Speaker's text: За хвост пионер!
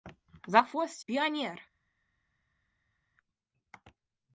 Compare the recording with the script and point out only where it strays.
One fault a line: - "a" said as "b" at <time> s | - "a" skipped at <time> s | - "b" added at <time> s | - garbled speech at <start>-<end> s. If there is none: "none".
none